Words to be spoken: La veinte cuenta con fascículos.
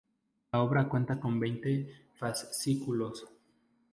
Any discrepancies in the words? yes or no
yes